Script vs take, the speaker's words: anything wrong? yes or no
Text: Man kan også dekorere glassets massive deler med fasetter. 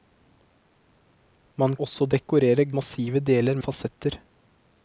yes